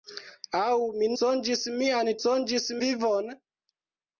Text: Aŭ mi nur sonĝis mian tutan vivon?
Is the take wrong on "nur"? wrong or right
wrong